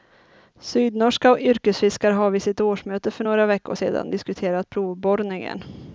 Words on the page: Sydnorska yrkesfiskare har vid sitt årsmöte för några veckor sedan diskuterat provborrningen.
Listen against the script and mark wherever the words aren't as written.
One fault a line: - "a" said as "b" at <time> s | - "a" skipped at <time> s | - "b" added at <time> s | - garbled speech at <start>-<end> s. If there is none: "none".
none